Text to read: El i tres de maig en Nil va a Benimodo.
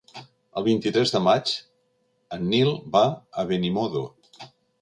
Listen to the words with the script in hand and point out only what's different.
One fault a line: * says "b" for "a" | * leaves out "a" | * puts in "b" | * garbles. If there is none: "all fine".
* puts in "vint"